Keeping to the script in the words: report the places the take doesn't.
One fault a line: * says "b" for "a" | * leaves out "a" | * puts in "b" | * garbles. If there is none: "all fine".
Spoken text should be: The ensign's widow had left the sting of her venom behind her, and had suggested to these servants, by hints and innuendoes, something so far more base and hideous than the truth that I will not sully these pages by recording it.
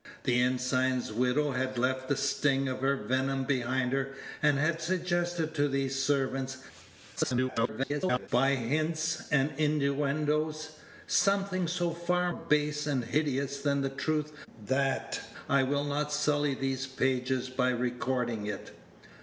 * garbles
* leaves out "more"